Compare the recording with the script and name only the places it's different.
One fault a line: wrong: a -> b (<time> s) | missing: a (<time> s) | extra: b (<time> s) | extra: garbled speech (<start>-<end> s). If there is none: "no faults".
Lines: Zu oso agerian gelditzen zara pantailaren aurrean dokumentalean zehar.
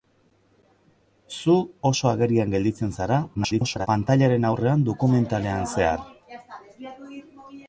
extra: garbled speech (3.3-3.9 s)